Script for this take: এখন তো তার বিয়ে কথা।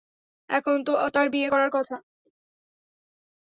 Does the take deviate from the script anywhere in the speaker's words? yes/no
yes